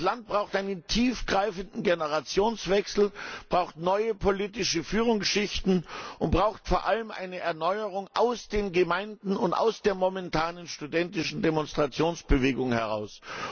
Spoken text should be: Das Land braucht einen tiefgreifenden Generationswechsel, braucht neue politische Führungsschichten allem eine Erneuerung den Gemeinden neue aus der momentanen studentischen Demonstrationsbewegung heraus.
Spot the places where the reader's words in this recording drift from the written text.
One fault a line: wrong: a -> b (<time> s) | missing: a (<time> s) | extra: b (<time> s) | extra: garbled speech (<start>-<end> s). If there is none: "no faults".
extra: und braucht vor (6.2 s)
extra: aus (8.2 s)
wrong: neue -> und (9.4 s)